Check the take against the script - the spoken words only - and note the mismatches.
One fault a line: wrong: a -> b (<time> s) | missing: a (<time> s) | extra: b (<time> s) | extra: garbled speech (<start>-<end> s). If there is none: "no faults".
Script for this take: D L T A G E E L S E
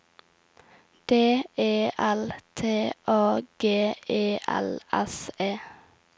extra: E (1.6 s)
missing: E (4.4 s)